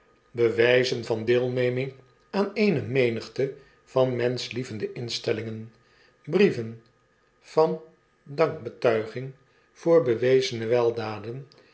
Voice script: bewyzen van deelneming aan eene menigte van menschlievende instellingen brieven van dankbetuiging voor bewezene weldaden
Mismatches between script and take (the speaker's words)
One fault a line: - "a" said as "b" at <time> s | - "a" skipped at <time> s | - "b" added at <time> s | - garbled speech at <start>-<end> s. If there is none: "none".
none